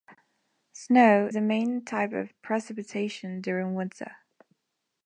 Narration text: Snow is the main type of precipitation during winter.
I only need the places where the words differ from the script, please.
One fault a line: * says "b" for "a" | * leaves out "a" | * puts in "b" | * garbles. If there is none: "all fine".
* leaves out "is"